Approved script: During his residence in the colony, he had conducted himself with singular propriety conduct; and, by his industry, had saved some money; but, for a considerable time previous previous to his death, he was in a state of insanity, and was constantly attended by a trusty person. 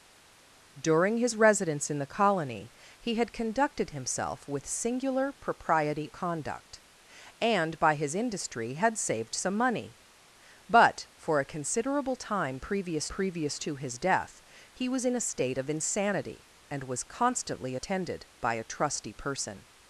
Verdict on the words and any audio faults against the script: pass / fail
pass